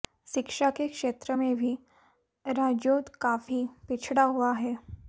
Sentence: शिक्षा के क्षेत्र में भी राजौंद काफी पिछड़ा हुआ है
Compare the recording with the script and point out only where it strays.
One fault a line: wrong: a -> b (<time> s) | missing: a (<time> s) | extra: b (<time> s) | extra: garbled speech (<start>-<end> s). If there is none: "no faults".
no faults